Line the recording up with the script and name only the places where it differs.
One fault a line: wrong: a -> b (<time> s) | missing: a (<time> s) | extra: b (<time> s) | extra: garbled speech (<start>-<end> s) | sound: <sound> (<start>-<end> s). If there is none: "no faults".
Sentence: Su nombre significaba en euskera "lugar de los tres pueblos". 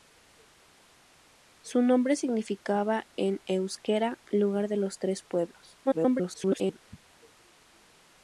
extra: garbled speech (5.9-6.8 s)